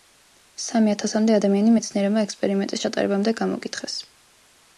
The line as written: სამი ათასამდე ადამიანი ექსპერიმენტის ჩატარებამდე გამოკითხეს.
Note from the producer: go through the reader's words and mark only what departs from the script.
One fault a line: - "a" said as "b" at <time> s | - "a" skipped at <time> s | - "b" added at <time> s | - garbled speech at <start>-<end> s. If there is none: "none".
- "მეცნიერებმა" added at 1.8 s